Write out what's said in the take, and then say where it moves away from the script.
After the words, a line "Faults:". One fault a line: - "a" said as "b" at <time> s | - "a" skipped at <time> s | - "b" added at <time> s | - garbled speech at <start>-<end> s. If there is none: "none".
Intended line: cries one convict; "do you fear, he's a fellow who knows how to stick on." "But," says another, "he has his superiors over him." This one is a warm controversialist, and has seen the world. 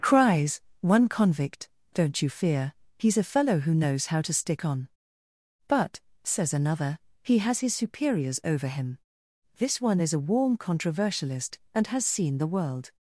cries one convict; "don't you fear, he's a fellow who knows how to stick on." "But," says another, "he has his superiors over him." This one is a warm controversialist, and has seen the world.
Faults:
- "do" said as "don't" at 1.9 s